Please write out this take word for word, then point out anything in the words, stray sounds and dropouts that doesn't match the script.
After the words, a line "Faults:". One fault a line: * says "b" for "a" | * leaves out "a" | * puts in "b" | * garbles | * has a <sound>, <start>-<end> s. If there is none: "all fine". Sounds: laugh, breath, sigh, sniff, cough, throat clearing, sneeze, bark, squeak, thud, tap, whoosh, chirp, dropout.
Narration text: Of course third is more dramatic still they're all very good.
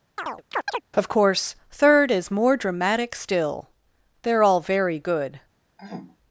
Of course third is more dramatic still they're all very good.
Faults:
* has a chirp, 0.2-0.8 s
* has a throat clearing, 5.8-6.2 s